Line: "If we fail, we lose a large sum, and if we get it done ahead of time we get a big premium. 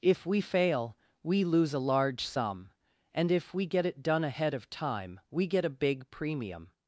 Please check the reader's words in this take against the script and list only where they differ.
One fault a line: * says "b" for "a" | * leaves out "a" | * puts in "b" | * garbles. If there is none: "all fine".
all fine